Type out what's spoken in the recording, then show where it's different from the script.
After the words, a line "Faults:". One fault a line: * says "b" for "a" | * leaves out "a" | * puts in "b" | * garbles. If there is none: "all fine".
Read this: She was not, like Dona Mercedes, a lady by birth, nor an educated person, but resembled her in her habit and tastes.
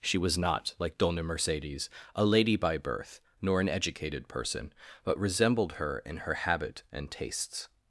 She was not, like Dona Mercedes, a lady by birth, nor an educated person, but resembled her in her habit and tastes.
Faults:
all fine